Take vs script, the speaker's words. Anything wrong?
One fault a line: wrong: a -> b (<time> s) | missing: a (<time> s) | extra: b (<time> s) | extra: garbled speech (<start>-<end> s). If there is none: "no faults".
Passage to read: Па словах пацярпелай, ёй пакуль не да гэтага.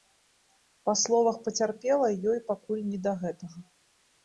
no faults